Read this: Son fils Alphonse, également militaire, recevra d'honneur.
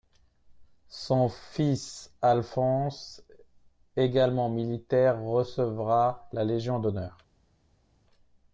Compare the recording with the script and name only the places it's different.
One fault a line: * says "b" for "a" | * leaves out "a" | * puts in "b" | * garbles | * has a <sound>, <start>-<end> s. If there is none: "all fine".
* puts in "la Légion"